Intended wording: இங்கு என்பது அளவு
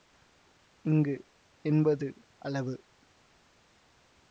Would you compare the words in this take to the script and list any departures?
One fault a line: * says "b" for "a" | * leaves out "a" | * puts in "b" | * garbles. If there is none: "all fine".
all fine